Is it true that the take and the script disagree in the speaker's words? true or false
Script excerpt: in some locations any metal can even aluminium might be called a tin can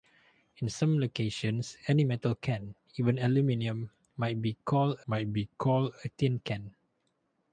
true